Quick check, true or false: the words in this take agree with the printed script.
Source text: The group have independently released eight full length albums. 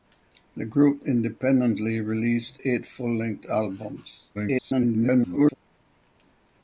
false